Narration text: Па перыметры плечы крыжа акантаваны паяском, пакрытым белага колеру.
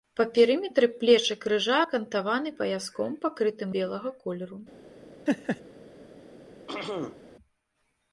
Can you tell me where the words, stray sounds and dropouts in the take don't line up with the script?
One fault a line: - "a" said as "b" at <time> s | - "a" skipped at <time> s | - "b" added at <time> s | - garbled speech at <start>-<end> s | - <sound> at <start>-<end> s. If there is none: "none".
- laugh at 5.3-5.6 s
- throat clearing at 6.7-7.3 s